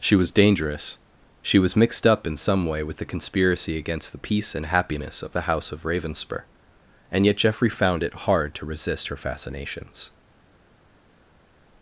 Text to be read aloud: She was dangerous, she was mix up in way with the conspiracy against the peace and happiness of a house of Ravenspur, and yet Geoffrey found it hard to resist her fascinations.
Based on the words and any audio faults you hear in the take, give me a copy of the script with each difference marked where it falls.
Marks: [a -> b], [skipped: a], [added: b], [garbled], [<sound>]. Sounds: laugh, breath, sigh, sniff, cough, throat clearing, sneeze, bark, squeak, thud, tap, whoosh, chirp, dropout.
She was dangerous, she was [mix -> mixed] up in [added: some] way with the conspiracy against the peace and happiness of [a -> the] house of Ravenspur, and yet Geoffrey found it hard to resist her fascinations.